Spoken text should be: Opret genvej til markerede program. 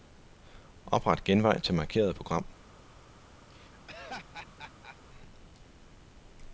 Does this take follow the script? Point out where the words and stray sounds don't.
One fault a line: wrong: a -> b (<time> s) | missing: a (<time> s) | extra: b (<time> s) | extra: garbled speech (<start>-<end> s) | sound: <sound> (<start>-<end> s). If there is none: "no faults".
sound: laugh (3.5-5.0 s)